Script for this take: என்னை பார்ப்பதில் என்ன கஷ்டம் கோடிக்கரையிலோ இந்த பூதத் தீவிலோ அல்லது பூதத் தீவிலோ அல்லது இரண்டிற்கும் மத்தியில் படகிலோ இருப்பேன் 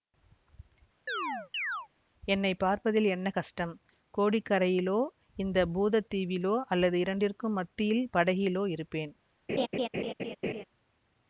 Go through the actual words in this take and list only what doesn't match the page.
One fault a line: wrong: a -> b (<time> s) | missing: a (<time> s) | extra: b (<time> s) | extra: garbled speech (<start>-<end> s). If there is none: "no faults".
missing: பூதத் தீவிலோ அல்லது (7.0 s)